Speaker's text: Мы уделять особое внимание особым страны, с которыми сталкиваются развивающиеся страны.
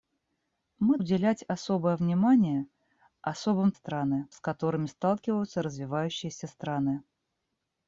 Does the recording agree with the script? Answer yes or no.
yes